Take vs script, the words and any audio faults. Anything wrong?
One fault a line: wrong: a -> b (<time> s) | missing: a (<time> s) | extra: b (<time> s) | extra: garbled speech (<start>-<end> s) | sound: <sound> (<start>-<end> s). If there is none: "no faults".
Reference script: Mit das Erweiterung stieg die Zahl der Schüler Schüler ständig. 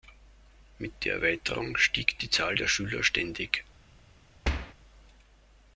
wrong: das -> der (1.1 s)
missing: Schüler (3.0 s)
sound: thud (4.4-4.7 s)